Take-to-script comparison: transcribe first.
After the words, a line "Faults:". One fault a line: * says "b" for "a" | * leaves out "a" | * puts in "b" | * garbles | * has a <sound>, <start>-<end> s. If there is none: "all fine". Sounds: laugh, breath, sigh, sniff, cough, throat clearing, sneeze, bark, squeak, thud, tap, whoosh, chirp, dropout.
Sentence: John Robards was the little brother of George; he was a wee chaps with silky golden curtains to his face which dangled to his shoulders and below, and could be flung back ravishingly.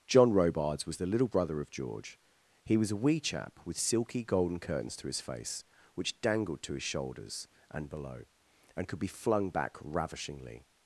John Robards was the little brother of George; he was a wee chap with silky golden curtains to his face which dangled to his shoulders and below, and could be flung back ravishingly.
Faults:
* says "chap" for "chaps"